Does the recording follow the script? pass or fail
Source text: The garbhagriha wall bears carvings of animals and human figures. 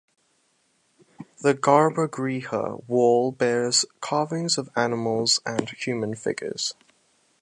pass